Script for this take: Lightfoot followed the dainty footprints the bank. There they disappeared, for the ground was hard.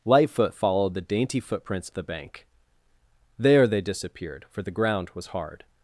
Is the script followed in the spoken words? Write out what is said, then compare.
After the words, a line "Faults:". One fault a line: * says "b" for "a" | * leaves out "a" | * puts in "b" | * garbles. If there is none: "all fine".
Lightfoot followed the dainty footprints the bank. There they disappeared, for the ground was hard.
Faults:
all fine